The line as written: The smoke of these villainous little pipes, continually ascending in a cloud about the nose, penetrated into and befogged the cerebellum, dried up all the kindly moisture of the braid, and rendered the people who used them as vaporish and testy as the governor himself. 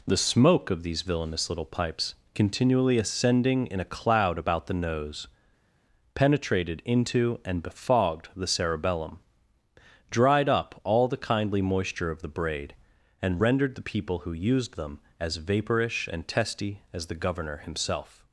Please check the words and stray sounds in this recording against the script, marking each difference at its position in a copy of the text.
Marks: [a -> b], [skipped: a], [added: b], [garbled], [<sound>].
The smoke of these villainous little pipes, continually ascending in a cloud about the nose, penetrated into and befogged the cerebellum, dried up all the kindly moisture of the braid, and rendered the people who used them as vaporish and testy as the governor himself.